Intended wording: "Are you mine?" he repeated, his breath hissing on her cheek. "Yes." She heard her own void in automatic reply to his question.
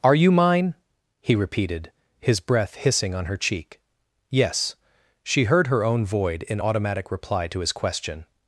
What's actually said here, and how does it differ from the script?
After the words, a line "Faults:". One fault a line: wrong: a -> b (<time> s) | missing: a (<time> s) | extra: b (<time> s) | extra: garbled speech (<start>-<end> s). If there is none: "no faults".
"Are you mine?" he repeated, his breath hissing on her cheek. "Yes." She heard her own void in automatic reply to his question.
Faults:
no faults